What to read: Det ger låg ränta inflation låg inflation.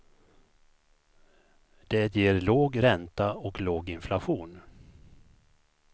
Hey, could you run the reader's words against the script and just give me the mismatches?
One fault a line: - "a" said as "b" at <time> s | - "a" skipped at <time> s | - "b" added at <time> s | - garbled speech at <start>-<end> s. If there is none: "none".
- "inflation" said as "och" at 3.3 s